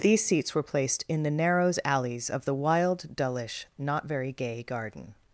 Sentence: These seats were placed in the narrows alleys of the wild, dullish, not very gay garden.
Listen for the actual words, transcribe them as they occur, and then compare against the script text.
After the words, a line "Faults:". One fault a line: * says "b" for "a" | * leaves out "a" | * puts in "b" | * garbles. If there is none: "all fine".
These seats were placed in the narrows alleys of the wild, dullish, not very gay garden.
Faults:
all fine